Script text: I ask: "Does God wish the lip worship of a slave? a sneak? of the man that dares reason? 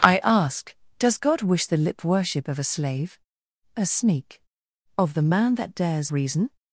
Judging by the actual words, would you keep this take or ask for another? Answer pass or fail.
pass